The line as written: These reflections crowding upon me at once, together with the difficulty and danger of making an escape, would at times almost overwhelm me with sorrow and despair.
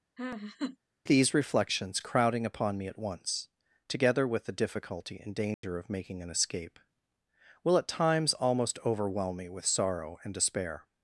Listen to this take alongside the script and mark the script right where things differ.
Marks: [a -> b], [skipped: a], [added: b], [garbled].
These reflections crowding upon me at once, together with the difficulty and danger of making an escape, [would -> will] at times almost overwhelm me with sorrow and despair.